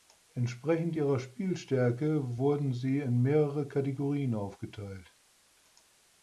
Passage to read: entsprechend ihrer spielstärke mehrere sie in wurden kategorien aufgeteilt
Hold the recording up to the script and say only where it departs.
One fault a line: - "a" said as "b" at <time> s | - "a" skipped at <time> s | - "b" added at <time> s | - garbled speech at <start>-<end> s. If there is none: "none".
- "mehrere" said as "wurden" at 2.4 s
- "wurden" said as "mehrere" at 3.2 s